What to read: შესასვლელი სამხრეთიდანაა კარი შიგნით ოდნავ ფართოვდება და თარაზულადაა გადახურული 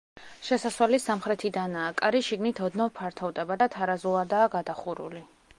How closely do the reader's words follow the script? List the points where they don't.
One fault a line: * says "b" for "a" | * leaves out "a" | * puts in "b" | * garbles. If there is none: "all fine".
all fine